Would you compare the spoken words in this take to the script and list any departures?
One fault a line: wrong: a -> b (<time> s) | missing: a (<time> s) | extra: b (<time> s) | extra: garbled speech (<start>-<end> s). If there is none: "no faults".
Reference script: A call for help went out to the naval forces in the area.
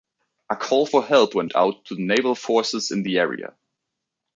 no faults